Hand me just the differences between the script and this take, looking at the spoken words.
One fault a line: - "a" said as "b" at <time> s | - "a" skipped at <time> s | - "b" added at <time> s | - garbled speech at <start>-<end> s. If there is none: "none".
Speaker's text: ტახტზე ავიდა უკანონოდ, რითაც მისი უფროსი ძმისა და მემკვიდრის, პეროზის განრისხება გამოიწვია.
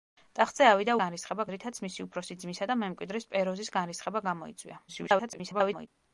- "უკანონოდ" said as "განრისხება" at 1.0 s
- garbled speech at 4.9-5.9 s